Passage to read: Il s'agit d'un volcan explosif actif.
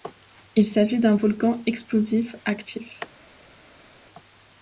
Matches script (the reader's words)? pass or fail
pass